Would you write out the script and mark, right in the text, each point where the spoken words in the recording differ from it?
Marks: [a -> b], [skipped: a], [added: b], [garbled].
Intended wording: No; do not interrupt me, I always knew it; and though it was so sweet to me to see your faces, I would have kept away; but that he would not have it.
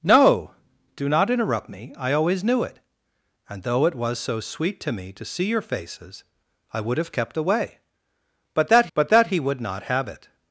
No; do not interrupt me, I always knew it; and though it was so sweet to me to see your faces, I would have kept away; but that [added: but that] he would not have it.